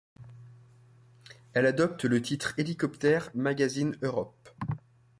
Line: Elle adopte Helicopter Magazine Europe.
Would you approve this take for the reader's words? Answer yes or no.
no